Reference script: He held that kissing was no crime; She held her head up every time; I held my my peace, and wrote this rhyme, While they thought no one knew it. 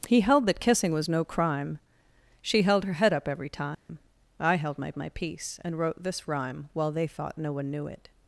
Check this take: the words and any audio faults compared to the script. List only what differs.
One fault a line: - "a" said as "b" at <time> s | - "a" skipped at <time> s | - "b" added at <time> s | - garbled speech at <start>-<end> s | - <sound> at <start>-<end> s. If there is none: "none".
- dropout at 3.7-3.9 s